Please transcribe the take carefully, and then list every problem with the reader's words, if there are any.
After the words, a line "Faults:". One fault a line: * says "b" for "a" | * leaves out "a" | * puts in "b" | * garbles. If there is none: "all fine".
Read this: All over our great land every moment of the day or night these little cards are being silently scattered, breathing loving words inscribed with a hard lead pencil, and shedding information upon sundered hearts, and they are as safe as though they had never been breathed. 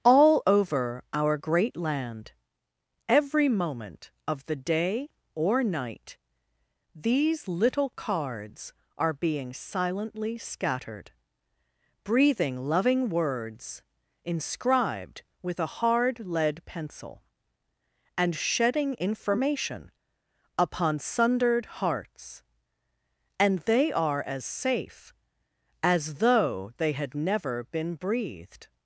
All over our great land every moment of the day or night these little cards are being silently scattered, breathing loving words inscribed with a hard lead pencil, and shedding information upon sundered hearts, and they are as safe as though they had never been breathed.
Faults:
all fine